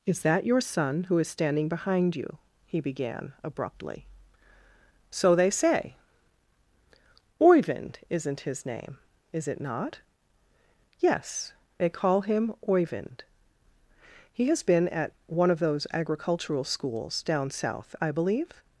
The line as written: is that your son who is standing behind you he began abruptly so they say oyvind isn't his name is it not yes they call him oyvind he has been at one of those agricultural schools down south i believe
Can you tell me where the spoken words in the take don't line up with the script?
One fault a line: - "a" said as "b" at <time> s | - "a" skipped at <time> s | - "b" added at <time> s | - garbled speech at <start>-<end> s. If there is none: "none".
none